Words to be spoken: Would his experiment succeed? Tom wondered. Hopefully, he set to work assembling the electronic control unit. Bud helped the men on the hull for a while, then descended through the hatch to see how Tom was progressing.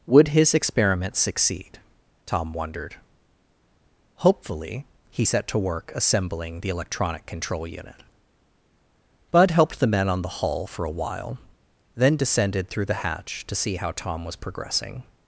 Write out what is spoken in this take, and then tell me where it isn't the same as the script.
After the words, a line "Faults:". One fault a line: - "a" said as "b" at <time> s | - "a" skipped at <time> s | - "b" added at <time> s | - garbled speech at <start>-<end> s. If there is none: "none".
Would his experiment succeed? Tom wondered. Hopefully, he set to work assembling the electronic control unit. Bud helped the men on the hull for a while, then descended through the hatch to see how Tom was progressing.
Faults:
none